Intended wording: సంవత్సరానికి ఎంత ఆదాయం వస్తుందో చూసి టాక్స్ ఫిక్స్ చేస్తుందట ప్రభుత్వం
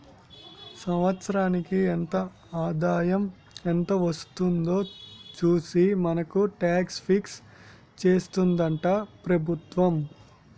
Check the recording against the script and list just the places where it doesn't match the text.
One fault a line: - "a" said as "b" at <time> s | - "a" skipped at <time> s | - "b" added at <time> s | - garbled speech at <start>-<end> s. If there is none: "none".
- "ఎంత" added at 3.6 s
- "మనకు" added at 6.1 s